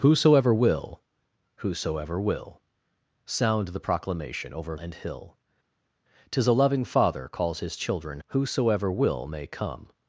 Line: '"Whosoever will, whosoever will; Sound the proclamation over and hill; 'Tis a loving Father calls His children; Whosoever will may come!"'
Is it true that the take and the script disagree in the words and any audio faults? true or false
false